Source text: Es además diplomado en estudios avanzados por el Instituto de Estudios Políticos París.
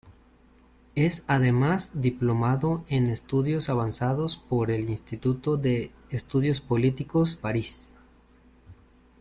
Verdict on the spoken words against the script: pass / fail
pass